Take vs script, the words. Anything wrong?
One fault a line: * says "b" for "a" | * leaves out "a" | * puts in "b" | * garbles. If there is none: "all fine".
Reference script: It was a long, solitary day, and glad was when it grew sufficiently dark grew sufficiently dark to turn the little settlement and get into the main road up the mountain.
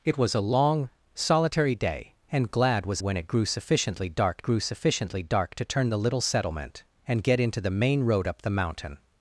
all fine